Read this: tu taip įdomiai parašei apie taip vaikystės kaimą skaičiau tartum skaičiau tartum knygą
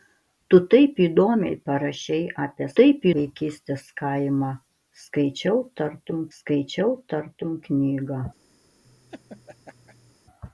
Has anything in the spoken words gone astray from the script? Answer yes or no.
no